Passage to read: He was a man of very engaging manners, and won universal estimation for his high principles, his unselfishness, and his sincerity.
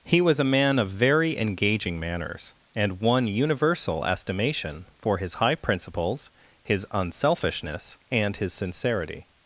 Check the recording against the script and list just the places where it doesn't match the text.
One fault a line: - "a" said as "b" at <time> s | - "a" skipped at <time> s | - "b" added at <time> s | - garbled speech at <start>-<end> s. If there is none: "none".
none